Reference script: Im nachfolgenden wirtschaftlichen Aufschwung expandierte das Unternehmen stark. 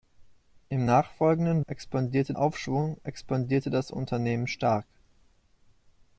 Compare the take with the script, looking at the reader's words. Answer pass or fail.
fail